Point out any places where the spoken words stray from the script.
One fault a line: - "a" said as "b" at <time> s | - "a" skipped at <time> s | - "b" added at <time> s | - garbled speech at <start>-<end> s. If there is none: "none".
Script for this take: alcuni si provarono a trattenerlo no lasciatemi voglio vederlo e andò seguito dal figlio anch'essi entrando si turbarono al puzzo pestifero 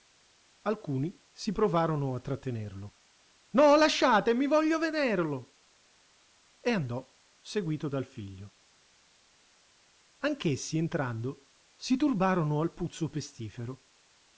none